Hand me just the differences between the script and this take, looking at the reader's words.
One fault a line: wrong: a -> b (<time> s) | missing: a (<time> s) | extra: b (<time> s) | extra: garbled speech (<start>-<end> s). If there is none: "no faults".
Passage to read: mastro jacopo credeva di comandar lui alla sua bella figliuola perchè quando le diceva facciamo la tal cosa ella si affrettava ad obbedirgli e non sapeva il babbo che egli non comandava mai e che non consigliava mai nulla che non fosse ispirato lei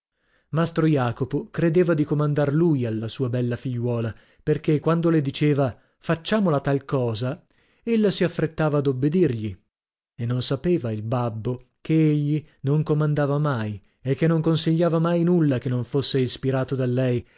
extra: da (16.8 s)